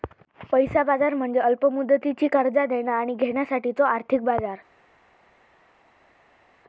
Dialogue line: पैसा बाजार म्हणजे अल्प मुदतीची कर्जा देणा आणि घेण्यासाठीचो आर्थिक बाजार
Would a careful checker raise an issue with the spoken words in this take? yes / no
no